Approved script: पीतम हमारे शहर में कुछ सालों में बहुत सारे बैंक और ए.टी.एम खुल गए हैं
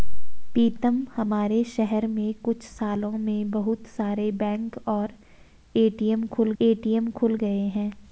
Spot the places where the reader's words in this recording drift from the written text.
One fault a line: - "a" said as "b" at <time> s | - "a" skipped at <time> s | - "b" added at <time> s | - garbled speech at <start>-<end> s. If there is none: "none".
- "ए.टी.एम खुल" added at 6.6 s